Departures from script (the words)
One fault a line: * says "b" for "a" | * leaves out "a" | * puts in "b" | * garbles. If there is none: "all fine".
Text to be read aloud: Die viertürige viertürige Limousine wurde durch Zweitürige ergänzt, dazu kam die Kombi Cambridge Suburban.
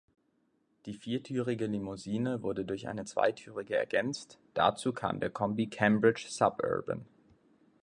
* leaves out "viertürige"
* puts in "eine"
* says "der" for "die"